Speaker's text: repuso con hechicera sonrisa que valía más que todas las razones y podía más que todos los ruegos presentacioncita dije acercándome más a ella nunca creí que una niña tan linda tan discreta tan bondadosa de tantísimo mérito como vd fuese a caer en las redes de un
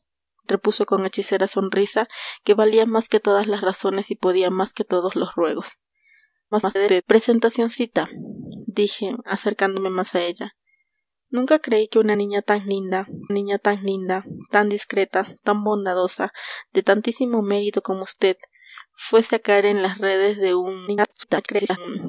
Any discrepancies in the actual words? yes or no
yes